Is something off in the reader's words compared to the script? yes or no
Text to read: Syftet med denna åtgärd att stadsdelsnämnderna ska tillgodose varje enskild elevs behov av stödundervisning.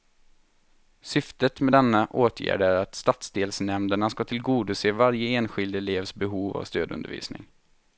yes